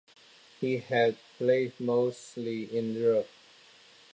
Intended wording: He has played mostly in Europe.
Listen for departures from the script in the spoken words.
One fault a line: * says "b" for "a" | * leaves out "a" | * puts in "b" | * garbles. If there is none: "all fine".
all fine